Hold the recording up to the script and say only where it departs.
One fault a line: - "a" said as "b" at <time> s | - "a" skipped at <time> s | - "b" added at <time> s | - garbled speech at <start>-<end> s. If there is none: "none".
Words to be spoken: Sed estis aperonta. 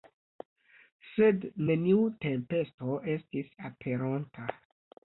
- "neniu tempesto" added at 1.7 s